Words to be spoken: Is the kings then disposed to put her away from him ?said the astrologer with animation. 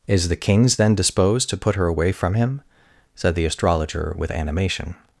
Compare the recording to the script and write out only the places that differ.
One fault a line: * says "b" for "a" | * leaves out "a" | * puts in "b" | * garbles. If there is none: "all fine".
all fine